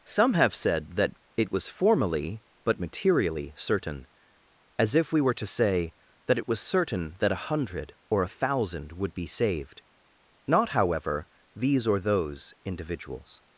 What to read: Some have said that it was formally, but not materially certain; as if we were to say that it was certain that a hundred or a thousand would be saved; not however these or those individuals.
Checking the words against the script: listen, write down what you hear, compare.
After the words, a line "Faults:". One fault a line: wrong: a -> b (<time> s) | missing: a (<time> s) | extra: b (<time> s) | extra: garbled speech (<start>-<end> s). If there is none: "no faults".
Some have said that it was formally, but materially certain; as if we were to say that it was certain that a hundred or a thousand would be saved; not however these or those individuals.
Faults:
missing: not (2.8 s)